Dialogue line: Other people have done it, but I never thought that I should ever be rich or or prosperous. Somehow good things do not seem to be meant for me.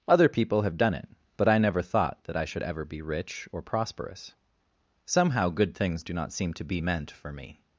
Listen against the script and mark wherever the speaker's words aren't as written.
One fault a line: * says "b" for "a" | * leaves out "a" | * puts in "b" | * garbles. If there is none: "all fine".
* leaves out "or"